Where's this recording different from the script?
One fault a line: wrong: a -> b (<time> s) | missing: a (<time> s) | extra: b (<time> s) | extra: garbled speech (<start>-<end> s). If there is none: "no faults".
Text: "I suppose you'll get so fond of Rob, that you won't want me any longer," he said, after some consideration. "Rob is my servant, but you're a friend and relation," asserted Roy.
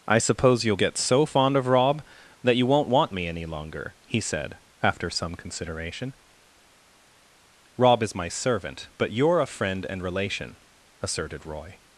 no faults